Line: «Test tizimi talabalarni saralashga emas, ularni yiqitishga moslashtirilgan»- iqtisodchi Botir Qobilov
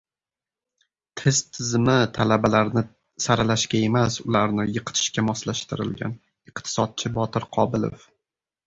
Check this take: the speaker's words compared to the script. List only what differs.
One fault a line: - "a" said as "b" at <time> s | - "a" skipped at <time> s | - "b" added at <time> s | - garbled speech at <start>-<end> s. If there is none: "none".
none